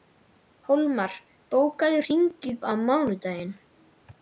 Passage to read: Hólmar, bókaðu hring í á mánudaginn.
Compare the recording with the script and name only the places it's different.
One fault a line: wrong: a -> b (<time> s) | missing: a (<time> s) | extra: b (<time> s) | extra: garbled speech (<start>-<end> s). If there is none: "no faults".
no faults